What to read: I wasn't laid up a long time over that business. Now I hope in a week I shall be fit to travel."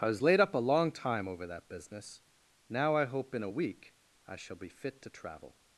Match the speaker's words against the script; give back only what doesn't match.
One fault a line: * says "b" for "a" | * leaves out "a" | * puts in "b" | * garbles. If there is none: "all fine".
* says "was" for "wasn't"